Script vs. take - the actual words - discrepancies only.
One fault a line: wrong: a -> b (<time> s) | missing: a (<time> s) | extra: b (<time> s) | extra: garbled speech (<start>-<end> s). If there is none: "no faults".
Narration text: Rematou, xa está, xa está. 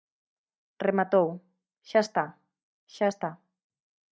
no faults